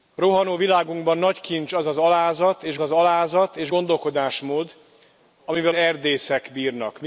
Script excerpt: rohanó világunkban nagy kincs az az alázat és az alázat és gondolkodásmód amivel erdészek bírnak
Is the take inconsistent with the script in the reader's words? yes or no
no